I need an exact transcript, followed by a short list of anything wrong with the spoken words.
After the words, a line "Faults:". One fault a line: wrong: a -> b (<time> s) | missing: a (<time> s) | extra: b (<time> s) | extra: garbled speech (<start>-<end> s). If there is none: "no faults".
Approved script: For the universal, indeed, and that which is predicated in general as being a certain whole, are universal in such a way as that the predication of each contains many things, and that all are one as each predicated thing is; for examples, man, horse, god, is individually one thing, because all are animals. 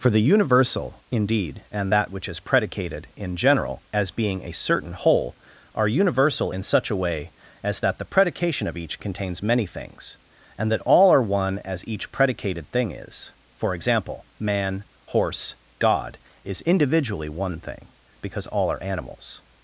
For the universal, indeed, and that which is predicated in general as being a certain whole, are universal in such a way as that the predication of each contains many things, and that all are one as each predicated thing is; for example, man, horse, god, is individually one thing, because all are animals.
Faults:
wrong: examples -> example (13.7 s)